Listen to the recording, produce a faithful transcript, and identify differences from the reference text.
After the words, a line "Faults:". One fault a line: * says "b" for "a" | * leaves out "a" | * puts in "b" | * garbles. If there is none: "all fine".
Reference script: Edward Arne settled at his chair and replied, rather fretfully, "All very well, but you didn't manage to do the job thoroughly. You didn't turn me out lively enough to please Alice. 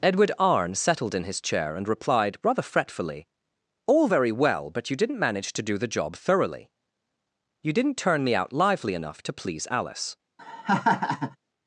Edward Arne settled in his chair and replied, rather fretfully, "All very well, but you didn't manage to do the job thoroughly. You didn't turn me out lively enough to please Alice.
Faults:
* says "in" for "at"